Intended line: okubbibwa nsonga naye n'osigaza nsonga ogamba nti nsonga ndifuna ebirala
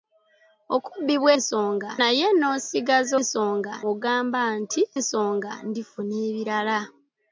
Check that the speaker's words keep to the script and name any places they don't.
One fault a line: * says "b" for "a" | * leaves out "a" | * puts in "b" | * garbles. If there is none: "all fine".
all fine